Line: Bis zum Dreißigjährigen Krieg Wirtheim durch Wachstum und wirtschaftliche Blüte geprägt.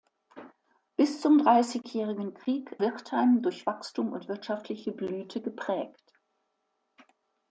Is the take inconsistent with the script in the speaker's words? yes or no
no